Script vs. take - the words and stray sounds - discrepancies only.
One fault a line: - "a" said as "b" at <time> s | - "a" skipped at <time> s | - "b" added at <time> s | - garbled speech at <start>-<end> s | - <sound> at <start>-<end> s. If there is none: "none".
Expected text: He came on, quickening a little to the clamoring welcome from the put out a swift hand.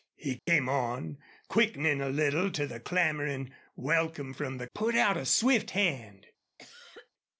- dropout at 0.4-0.5 s
- cough at 6.6-7.1 s